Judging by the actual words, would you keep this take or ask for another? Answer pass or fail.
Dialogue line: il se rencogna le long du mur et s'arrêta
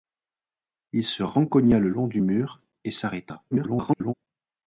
fail